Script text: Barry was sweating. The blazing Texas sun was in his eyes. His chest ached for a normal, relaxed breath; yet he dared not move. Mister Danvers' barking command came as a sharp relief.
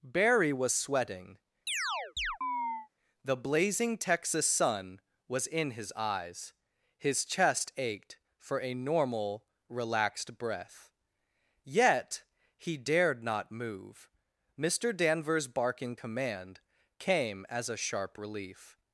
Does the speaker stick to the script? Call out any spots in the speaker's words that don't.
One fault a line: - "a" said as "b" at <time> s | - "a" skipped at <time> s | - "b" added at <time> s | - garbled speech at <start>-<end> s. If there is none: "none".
none